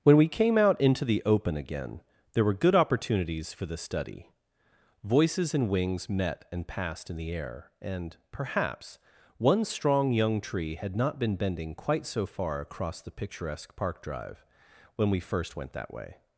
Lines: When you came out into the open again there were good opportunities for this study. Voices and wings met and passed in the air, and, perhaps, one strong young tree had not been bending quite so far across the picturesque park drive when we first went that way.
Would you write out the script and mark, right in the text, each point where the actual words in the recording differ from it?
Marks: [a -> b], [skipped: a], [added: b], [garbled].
When [you -> we] came out into the open again there were good opportunities for this study. Voices and wings met and passed in the air, and, perhaps, one strong young tree had not been bending quite so far across the picturesque park drive when we first went that way.